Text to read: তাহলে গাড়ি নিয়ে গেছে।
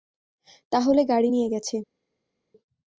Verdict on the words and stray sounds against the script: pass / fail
pass